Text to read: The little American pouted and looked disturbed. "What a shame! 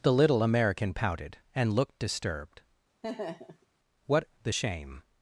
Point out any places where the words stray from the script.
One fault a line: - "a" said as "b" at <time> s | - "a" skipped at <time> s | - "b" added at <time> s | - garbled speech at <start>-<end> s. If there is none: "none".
- "a" said as "the" at 4.4 s